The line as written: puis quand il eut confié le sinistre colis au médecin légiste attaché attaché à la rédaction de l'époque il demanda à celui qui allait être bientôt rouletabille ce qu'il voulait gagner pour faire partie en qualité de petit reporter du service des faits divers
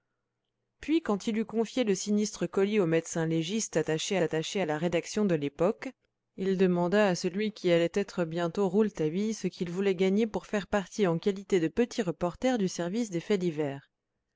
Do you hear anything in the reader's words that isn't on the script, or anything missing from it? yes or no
no